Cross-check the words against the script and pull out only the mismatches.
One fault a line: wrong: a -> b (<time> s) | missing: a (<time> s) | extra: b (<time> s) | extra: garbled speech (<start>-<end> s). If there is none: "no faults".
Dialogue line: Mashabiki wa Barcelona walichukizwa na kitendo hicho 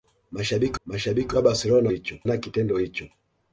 extra: mashabiki (0.9 s)
wrong: walichukizwa -> hicho (1.9 s)